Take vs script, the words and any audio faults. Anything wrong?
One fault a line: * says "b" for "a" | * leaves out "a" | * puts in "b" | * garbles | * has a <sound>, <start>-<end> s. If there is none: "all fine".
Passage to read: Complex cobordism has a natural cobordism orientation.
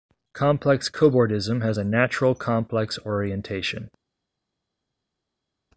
* says "complex" for "cobordism"